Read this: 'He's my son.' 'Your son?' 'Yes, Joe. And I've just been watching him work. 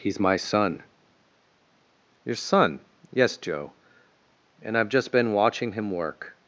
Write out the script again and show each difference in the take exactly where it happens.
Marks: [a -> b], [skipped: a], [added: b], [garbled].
'He's my son.' 'Your son?' 'Yes, Joe. And I've just been watching him work.